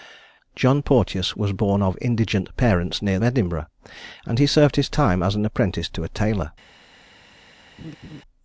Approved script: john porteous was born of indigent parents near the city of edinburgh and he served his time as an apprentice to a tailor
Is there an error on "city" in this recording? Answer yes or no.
yes